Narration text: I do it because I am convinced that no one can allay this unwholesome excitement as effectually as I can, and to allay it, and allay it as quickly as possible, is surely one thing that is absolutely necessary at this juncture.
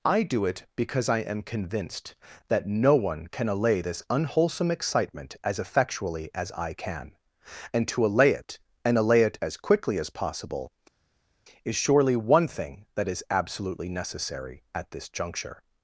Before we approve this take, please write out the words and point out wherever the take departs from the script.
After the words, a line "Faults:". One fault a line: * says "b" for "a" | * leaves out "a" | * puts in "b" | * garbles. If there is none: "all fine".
I do it because I am convinced that no one can allay this unwholesome excitement as effectually as I can, and to allay it, and allay it as quickly as possible, is surely one thing that is absolutely necessary at this juncture.
Faults:
all fine